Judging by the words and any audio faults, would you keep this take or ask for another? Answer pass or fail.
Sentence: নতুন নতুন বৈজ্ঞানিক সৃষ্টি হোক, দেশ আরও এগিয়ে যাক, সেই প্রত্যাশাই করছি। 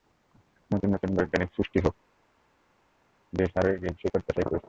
fail